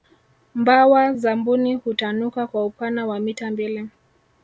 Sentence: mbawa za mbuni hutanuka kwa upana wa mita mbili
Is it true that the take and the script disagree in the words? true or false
false